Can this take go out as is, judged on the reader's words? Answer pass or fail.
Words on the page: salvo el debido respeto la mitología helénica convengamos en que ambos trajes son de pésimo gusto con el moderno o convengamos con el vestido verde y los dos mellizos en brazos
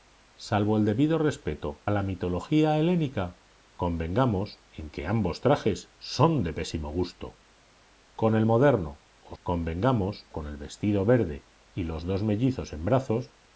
pass